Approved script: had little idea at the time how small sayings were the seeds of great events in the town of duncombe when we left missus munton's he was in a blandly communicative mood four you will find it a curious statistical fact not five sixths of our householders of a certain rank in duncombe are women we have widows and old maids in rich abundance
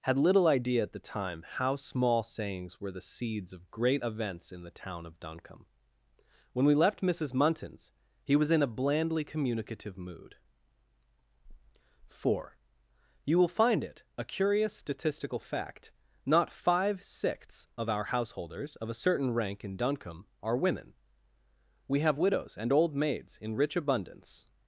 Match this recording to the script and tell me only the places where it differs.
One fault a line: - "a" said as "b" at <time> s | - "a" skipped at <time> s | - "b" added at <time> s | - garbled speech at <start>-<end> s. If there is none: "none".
none